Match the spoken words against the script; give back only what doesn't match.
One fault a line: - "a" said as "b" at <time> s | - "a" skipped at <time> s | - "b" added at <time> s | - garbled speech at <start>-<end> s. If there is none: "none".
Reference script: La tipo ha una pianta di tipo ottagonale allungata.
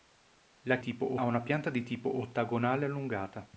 none